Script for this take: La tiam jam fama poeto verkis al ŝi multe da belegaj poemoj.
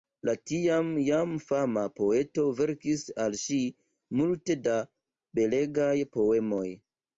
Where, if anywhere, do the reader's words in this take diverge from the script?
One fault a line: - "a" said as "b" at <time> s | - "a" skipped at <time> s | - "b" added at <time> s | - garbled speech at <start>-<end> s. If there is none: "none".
none